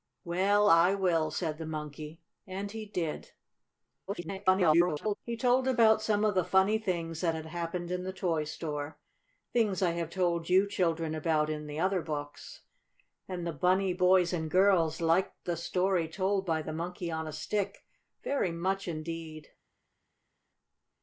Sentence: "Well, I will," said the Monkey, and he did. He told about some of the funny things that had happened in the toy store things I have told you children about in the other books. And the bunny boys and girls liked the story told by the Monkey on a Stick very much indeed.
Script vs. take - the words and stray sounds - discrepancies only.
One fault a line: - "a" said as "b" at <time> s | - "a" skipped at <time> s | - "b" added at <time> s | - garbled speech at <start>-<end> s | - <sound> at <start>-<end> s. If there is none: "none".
- garbled speech at 4.1-5.2 s